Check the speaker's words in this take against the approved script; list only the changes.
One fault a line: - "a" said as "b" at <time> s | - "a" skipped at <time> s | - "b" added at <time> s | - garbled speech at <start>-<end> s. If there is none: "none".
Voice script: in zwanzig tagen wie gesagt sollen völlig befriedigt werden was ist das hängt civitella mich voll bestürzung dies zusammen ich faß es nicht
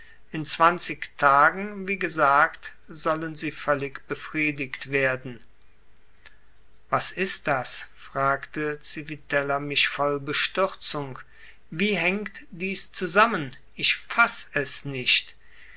- "sie" added at 3.4 s
- "hängt" said as "fragte" at 8.0 s
- "wie hängt" added at 11.7 s